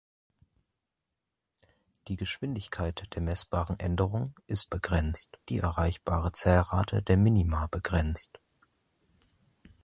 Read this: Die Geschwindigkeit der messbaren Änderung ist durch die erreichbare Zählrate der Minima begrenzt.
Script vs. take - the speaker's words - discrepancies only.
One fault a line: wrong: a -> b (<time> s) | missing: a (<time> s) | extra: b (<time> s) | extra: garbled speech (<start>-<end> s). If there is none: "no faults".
wrong: durch -> begrenzt (4.6 s)